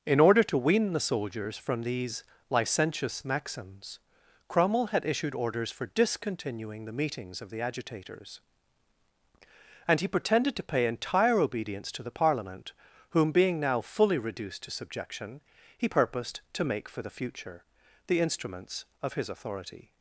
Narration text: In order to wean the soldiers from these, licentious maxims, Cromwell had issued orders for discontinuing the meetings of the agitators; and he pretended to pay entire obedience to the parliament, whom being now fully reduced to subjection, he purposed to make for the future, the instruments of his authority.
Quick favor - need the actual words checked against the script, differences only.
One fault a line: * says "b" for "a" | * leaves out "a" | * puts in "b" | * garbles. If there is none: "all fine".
all fine